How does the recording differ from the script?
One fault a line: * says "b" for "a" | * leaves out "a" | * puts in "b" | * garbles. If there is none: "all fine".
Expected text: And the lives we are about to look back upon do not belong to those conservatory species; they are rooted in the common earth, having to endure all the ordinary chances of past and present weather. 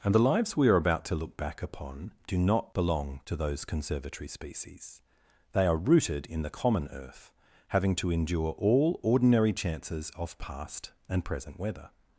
* leaves out "the"